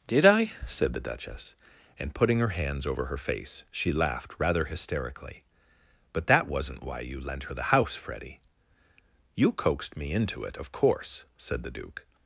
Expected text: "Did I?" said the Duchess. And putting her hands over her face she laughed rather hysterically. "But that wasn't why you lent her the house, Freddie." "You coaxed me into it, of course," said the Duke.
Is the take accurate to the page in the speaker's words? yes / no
yes